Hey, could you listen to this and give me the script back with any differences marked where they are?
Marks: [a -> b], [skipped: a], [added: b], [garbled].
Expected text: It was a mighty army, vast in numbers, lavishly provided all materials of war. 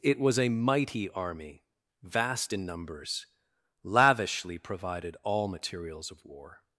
It was a mighty army, vast in numbers, lavishly provided all materials of war.